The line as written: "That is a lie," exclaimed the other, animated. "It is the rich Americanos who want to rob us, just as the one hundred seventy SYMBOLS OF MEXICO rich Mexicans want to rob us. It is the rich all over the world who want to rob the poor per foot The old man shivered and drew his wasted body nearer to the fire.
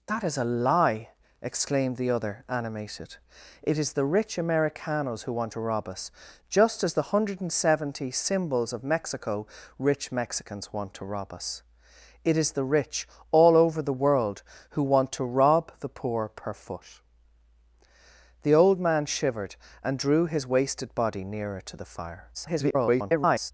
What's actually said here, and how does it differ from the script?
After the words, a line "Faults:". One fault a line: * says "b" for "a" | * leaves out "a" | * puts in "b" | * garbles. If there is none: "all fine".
"That is a lie," exclaimed the other, animated. "It is the rich Americanos who want to rob us, just as the one hundred seventy SYMBOLS OF MEXICO rich Mexicans want to rob us. It is the rich all over the world who want to rob the poor per foot The old man shivered and drew his wasted body nearer to the fire. [garbled]
Faults:
* garbles